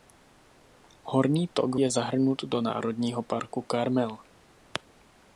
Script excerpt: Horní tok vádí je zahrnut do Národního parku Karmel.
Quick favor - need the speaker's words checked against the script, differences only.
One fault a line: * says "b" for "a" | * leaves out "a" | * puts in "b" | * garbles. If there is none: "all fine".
* leaves out "vádí"